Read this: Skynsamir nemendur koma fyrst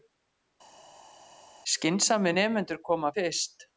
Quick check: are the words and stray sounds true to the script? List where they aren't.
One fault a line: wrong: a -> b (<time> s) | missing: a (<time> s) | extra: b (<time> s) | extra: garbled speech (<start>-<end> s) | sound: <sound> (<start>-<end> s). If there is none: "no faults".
no faults